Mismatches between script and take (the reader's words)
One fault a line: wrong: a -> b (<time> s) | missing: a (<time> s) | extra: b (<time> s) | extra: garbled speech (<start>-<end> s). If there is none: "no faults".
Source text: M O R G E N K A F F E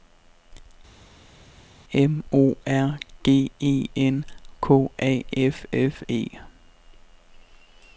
no faults